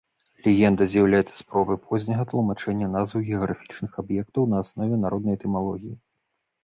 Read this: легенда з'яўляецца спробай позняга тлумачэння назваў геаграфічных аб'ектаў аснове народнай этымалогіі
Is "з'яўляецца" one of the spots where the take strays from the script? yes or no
no